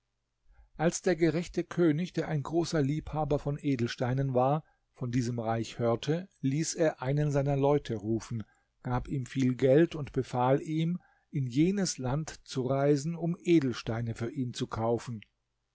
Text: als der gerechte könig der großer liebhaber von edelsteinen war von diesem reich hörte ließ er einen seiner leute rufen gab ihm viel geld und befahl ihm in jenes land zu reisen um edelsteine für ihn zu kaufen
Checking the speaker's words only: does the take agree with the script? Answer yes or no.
no